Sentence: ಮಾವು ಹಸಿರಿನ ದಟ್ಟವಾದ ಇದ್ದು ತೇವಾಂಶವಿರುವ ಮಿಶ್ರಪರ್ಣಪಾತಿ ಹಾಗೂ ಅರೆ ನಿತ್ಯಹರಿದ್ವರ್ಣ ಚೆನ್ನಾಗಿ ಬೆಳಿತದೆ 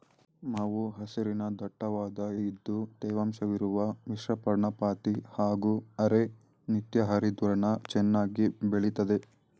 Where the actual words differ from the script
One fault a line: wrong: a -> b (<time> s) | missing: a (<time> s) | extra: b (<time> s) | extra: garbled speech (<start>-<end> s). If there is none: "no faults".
no faults